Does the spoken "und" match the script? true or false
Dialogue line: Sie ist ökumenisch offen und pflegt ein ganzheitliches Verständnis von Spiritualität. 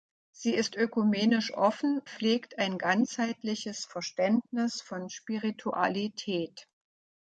false